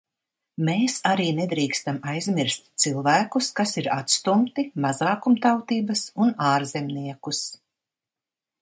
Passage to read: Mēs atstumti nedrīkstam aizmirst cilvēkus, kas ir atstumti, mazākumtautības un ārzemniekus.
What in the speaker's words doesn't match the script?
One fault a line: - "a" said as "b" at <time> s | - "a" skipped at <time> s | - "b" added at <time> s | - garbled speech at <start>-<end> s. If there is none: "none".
- "atstumti" said as "arī" at 1.1 s